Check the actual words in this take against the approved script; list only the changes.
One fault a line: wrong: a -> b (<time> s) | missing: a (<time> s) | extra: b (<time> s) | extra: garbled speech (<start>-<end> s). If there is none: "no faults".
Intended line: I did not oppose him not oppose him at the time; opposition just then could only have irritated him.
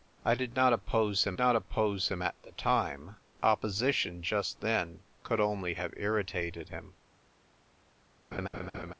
no faults